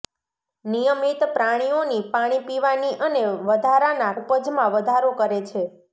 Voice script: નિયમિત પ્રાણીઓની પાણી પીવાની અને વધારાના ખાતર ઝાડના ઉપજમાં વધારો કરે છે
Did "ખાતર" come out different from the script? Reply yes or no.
yes